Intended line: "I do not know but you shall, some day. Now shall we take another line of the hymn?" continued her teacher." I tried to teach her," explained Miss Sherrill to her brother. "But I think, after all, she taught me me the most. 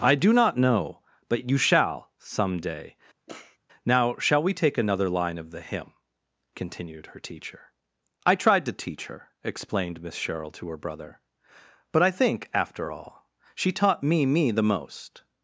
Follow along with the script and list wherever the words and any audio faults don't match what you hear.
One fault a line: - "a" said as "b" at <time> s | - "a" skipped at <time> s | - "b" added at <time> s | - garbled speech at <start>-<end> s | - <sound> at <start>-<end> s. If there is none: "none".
- sniff at 3.3-3.6 s